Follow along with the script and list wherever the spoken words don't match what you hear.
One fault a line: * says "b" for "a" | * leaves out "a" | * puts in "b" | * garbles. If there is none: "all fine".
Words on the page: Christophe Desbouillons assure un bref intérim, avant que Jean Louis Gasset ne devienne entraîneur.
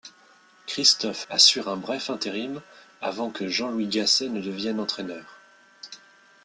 * leaves out "Desbouillons"